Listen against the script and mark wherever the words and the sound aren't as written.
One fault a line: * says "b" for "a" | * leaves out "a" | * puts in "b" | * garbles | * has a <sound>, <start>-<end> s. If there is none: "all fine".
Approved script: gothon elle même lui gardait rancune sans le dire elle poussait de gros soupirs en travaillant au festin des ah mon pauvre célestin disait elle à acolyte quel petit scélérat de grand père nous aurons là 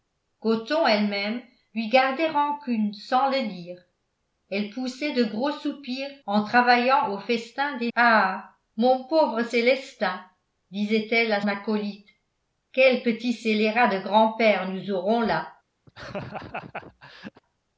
* has a laugh, 15.9-17.4 s